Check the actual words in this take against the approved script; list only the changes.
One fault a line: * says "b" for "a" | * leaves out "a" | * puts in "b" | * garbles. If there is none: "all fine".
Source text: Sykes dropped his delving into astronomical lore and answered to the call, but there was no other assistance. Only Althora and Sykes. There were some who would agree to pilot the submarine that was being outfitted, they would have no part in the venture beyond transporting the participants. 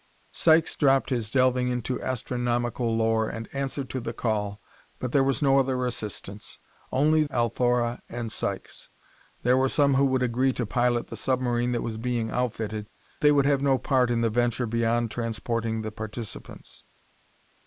all fine